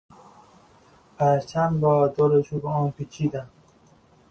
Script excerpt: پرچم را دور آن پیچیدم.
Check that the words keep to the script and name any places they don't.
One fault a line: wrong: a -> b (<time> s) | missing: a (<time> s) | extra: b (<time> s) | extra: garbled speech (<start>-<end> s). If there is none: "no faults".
extra: چوب (2.4 s)